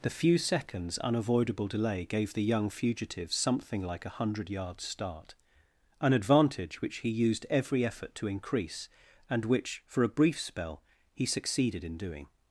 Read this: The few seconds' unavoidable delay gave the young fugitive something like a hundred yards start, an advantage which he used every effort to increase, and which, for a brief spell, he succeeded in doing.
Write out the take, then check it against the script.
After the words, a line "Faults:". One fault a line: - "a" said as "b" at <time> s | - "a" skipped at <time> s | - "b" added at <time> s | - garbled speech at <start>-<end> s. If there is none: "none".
The few seconds' unavoidable delay gave the young fugitive something like a hundred yards start, an advantage which he used every effort to increase, and which, for a brief spell, he succeeded in doing.
Faults:
none